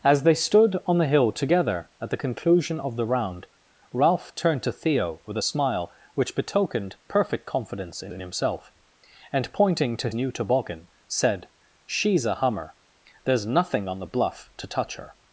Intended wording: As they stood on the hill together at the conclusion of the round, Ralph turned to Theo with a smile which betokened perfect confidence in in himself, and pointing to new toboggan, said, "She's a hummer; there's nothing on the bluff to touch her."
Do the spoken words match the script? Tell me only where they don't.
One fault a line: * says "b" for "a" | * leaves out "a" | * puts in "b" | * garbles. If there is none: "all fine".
all fine